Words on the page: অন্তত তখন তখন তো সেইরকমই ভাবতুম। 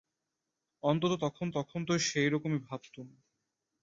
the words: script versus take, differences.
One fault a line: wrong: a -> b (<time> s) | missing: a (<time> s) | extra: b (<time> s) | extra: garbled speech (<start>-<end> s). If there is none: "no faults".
no faults